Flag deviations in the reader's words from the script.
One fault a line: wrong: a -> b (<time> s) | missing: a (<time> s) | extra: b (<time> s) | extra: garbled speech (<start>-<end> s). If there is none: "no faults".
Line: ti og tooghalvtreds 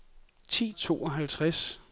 no faults